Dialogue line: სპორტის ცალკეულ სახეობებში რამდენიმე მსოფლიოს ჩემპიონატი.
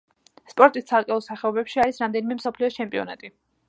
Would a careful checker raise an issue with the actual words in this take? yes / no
yes